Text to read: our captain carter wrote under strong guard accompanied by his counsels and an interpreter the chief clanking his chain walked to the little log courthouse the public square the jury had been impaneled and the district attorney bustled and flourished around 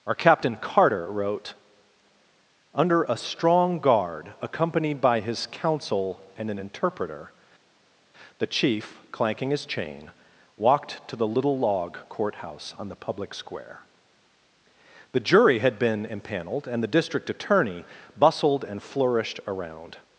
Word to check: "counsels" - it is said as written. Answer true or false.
false